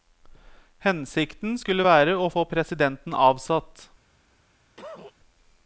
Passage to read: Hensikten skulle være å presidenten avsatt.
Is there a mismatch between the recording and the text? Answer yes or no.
yes